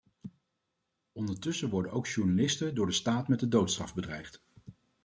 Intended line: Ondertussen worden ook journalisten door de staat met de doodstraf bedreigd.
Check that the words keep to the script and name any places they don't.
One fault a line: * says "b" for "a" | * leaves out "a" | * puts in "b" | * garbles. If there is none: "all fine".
all fine